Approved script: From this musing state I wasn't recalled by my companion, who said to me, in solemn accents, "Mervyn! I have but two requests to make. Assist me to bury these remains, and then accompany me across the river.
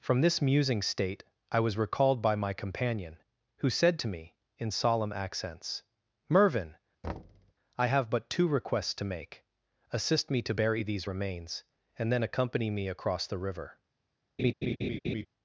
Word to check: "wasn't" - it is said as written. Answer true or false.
false